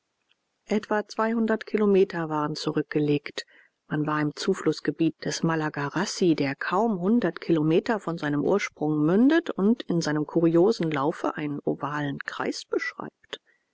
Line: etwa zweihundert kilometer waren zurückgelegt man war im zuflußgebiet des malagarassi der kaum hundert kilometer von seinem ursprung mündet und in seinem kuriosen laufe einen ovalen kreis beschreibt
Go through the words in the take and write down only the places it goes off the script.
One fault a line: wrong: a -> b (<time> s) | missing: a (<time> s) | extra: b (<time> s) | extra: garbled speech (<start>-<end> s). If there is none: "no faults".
no faults